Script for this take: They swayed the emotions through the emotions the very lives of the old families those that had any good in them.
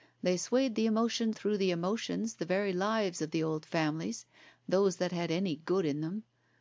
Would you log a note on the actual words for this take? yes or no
no